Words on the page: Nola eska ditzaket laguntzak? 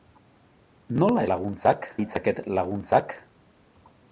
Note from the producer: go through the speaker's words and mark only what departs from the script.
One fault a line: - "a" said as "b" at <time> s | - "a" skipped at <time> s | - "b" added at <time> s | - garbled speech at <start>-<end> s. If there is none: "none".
- "eska" said as "laguntzak" at 1.3 s